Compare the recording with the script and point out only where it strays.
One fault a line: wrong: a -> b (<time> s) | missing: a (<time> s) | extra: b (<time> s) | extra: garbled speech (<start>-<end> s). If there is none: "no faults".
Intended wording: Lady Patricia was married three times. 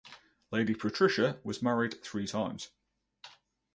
no faults